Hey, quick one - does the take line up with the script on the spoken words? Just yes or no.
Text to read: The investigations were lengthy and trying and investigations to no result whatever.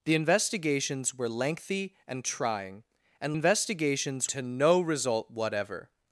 yes